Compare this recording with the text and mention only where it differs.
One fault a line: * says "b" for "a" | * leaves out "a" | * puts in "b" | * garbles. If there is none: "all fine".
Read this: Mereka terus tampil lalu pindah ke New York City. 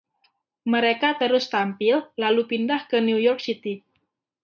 all fine